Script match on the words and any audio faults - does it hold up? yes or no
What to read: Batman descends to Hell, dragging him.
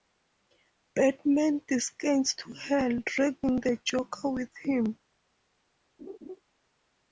no